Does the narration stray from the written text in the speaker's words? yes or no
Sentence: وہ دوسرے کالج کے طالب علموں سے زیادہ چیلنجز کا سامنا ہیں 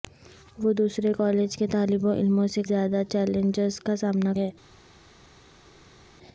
no